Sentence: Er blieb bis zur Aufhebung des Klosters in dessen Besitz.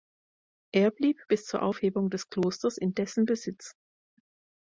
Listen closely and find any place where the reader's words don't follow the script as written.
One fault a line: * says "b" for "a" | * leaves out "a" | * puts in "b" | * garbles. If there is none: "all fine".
all fine